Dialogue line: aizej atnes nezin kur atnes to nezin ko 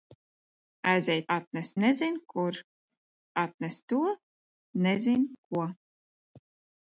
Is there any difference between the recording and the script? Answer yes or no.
no